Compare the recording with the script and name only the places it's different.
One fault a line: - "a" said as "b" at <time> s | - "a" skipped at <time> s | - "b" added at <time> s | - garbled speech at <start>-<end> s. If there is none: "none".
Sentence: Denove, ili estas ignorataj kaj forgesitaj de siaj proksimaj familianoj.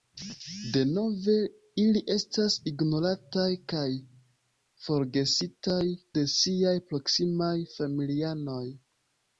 none